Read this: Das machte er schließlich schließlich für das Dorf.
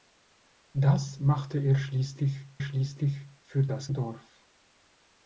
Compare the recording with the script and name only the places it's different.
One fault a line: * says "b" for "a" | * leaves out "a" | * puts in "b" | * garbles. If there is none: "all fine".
all fine